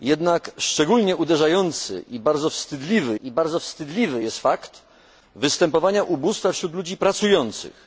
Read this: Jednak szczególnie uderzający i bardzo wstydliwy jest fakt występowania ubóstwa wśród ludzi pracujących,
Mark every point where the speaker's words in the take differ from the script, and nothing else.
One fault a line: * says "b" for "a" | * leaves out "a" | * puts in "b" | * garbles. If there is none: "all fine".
* puts in "i bardzo wstydliwy"